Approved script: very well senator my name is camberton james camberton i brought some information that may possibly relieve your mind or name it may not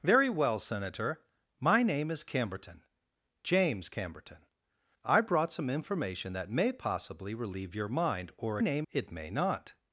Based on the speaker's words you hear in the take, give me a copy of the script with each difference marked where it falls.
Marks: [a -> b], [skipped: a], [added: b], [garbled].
very well senator my name is camberton james camberton i brought some information that may possibly relieve your mind or name it may not